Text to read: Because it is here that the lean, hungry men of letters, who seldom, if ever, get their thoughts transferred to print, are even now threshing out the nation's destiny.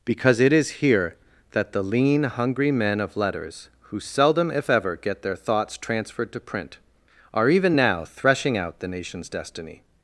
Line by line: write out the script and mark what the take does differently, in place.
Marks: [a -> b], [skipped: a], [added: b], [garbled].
Because it is here that the lean, hungry men of letters, who seldom, if ever, get their thoughts transferred to print, are even now threshing out the nation's destiny.